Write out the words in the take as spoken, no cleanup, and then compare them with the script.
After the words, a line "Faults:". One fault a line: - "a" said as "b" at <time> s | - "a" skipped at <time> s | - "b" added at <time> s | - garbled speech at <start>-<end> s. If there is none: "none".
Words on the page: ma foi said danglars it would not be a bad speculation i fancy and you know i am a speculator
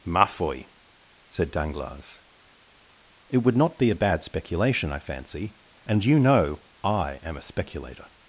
ma foi said danglars it would not be a bad speculation i fancy and you know i am a speculator
Faults:
none